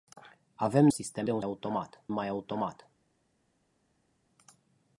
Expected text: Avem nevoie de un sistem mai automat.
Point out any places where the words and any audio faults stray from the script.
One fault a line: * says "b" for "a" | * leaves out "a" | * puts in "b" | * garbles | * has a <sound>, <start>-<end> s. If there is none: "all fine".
* says "sistem" for "nevoie"
* says "automat" for "sistem"